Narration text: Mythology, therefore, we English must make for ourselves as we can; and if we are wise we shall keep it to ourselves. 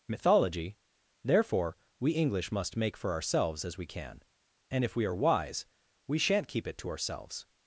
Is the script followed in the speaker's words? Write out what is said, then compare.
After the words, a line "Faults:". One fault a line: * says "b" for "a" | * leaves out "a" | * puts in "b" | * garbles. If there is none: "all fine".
Mythology, therefore, we English must make for ourselves as we can; and if we are wise we shan't keep it to ourselves.
Faults:
* says "shan't" for "shall"